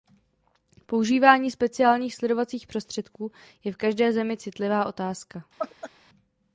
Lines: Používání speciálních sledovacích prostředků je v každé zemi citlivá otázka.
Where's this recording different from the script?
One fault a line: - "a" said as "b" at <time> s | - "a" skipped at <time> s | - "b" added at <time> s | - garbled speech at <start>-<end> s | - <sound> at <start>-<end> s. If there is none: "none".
- laugh at 5.6-5.9 s